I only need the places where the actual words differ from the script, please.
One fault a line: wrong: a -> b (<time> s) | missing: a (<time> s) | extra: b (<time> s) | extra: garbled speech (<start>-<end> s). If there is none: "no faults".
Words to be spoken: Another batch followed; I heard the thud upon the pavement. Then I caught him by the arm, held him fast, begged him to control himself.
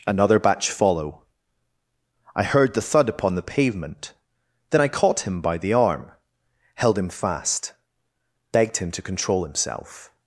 wrong: followed -> follow (0.7 s)